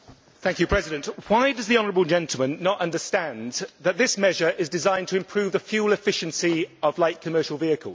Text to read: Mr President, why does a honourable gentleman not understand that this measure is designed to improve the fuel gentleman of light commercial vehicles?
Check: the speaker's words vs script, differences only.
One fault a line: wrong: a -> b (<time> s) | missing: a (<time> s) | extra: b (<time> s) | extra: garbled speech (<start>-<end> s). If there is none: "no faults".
wrong: a -> the (1.7 s)
wrong: gentleman -> efficiency (5.9 s)